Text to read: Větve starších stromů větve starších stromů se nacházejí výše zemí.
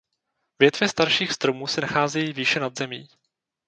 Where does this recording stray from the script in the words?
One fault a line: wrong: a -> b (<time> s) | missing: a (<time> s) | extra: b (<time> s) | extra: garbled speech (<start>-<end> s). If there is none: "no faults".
missing: větve starších stromů (1.7 s)
extra: nad (2.6 s)